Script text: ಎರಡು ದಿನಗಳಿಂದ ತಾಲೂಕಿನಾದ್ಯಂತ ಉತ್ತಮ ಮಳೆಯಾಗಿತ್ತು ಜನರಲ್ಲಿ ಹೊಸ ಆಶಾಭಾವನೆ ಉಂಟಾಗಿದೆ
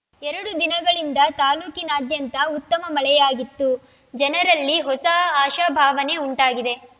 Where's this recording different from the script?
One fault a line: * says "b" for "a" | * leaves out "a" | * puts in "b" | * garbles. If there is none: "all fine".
all fine